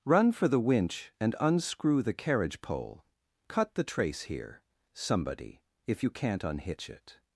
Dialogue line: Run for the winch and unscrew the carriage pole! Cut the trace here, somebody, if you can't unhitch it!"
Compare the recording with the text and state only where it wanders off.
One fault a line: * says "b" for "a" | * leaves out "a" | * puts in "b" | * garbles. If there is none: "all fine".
all fine